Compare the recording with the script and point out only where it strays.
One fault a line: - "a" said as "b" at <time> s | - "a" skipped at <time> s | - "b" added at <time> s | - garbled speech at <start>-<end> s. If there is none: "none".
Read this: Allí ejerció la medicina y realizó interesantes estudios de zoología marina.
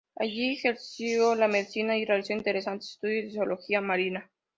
none